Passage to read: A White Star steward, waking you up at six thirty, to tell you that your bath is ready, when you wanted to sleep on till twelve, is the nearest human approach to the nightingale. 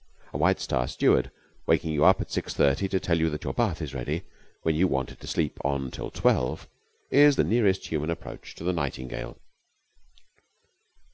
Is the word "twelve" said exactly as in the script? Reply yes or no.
yes